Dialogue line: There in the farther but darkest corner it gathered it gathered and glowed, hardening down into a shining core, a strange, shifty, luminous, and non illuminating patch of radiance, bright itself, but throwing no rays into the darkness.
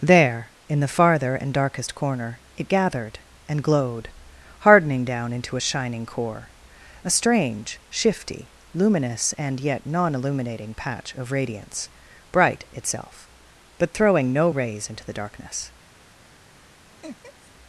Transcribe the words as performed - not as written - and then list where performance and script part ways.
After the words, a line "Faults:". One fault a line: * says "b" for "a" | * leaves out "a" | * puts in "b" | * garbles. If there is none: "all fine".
There in the farther and darkest corner it gathered and glowed, hardening down into a shining core, a strange, shifty, luminous, and yet non illuminating patch of radiance, bright itself, but throwing no rays into the darkness.
Faults:
* says "and" for "but"
* leaves out "it gathered"
* puts in "yet"